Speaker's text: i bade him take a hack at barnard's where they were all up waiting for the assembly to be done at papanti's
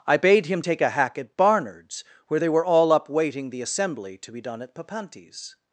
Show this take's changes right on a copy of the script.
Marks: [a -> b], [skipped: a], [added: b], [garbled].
i bade him take a hack at barnard's where they were all up waiting [skipped: for] the assembly to be done at papanti's